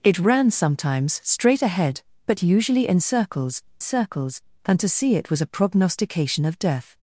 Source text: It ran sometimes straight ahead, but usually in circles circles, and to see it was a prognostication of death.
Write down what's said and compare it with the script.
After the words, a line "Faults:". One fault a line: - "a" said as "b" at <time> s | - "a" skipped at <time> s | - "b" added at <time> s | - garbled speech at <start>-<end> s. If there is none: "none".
It ran sometimes straight ahead, but usually in circles circles, and to see it was a prognostication of death.
Faults:
none